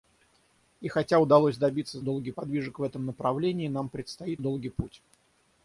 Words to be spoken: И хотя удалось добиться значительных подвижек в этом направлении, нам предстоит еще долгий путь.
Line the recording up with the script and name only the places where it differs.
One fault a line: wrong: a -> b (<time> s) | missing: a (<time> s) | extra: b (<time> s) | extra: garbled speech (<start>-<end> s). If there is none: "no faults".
wrong: значительных -> долгий (2.0 s)
missing: еще (4.4 s)